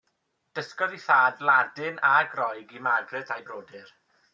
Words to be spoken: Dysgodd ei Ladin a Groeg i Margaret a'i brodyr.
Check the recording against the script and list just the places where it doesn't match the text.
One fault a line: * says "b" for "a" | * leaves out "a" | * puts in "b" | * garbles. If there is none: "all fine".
* puts in "thad"